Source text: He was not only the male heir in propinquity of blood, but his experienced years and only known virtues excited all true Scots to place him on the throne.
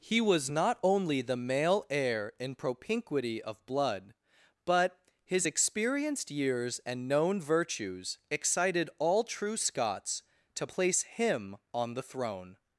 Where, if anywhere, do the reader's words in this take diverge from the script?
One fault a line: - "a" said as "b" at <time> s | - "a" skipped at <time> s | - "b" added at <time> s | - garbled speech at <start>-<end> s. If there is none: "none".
- "only" skipped at 7.1 s